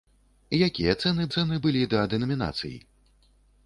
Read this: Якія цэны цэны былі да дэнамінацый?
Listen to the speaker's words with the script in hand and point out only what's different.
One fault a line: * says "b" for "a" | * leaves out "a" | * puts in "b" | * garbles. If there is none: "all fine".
all fine